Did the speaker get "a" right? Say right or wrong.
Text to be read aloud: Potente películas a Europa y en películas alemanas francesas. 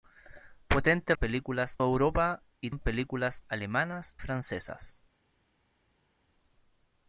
right